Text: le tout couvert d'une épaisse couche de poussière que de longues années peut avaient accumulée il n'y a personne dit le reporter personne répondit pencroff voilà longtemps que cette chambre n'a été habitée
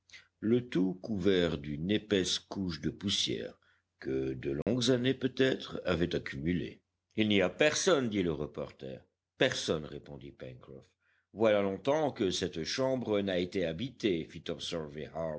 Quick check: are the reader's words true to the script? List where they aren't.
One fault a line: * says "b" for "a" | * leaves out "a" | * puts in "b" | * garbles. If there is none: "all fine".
* puts in "être"